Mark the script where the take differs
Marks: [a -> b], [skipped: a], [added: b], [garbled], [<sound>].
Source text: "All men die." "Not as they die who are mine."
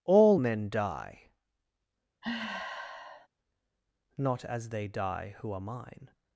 "All men die." [sigh] "Not as they die who are mine."